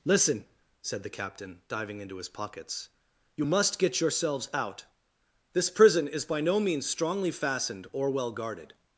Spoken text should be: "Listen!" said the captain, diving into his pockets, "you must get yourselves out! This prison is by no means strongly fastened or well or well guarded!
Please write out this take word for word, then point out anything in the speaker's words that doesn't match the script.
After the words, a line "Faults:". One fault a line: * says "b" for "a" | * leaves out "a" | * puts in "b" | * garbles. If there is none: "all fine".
"Listen!" said the captain, diving into his pockets, "you must get yourselves out! This prison is by no means strongly fastened or well guarded!
Faults:
* leaves out "or well"